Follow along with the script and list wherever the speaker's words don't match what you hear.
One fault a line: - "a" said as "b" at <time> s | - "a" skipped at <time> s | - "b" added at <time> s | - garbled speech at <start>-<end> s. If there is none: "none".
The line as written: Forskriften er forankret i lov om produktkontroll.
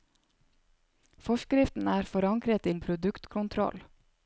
- "lov" skipped at 2.7 s